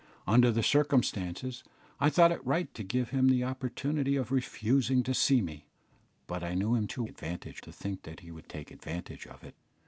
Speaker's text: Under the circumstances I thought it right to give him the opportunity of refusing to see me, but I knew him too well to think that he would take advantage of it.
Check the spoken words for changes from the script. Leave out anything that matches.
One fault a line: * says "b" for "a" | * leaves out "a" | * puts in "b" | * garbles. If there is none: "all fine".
* says "advantage" for "well"